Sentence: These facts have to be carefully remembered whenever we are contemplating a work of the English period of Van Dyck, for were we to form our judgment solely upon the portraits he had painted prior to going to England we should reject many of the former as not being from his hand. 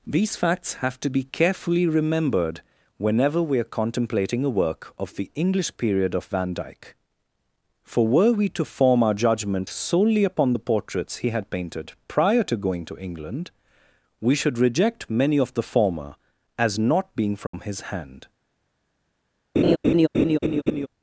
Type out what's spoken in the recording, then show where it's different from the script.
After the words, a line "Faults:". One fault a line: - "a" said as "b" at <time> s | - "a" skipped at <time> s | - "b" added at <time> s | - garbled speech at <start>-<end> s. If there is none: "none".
These facts have to be carefully remembered whenever we are contemplating a work of the English period of Van Dyck, for were we to form our judgment solely upon the portraits he had painted prior to going to England we should reject many of the former as not being from his hand.
Faults:
none